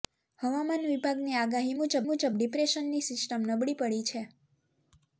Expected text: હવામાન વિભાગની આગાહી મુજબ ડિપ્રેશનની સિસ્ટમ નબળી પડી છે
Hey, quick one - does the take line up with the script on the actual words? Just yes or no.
no